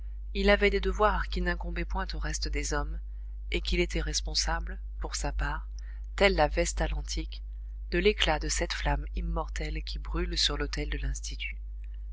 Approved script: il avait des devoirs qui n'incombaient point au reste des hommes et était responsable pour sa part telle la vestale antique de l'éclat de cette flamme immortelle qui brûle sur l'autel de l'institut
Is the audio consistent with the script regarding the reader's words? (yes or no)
no